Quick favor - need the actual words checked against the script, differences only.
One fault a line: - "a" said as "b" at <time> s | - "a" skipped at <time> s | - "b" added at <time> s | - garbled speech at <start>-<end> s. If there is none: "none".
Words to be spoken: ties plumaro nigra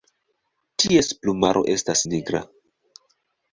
- "estas" added at 1.8 s